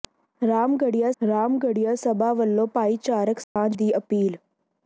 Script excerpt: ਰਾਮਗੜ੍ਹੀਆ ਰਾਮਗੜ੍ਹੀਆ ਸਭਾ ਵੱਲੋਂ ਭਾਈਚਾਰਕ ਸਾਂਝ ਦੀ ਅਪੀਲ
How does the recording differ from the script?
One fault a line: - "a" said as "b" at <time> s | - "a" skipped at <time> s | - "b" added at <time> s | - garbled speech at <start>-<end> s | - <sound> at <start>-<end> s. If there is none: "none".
- dropout at 3.4-3.6 s